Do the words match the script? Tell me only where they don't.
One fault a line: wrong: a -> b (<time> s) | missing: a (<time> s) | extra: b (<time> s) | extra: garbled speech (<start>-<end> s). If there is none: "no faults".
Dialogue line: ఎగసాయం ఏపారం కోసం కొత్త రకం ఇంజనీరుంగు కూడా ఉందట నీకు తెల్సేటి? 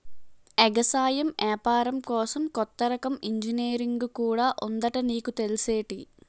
no faults